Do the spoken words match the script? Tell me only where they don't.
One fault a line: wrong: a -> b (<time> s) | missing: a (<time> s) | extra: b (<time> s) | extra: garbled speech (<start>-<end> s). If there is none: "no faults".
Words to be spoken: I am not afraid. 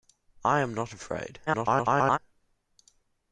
extra: garbled speech (1.5-2.2 s)